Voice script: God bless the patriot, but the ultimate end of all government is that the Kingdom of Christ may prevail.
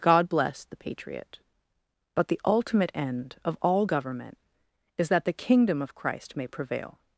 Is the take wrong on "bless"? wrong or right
right